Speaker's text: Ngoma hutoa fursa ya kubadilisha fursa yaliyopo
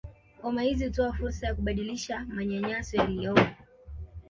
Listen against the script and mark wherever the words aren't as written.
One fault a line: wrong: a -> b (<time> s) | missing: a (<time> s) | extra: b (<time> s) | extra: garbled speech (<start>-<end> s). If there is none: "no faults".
extra: hizi (0.6 s)
wrong: fursa -> manyanyaso (2.3 s)